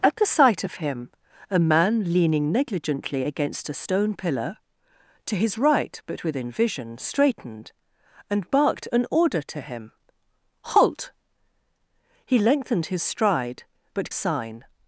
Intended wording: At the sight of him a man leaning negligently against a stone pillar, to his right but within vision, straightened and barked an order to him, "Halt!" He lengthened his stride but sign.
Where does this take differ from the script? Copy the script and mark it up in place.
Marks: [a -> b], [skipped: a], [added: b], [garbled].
At the sight of him a man leaning negligently against a stone pillar, to his right but within vision, straightened and barked an order to him, "Halt!" He lengthened his stride but sign.